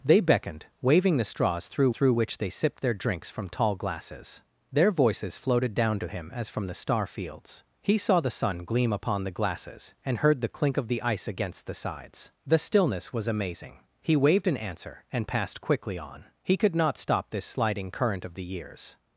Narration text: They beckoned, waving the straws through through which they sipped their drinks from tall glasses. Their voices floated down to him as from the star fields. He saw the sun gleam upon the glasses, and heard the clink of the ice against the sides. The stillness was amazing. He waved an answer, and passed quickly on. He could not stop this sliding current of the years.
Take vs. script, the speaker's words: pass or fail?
pass